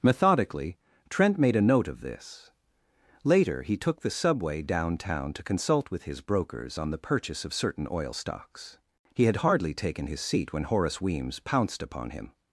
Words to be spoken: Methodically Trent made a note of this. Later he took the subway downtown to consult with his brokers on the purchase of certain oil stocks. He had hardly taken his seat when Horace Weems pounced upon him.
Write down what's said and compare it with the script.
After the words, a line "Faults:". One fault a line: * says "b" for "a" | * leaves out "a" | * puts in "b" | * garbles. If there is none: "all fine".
Methodically Trent made a note of this. Later he took the subway downtown to consult with his brokers on the purchase of certain oil stocks. He had hardly taken his seat when Horace Weems pounced upon him.
Faults:
all fine